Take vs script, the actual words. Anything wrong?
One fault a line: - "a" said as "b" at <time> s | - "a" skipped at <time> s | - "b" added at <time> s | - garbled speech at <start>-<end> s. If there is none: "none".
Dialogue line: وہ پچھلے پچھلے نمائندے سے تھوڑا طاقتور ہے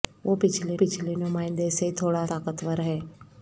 none